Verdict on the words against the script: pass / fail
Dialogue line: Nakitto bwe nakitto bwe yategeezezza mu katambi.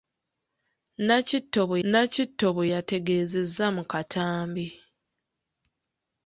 pass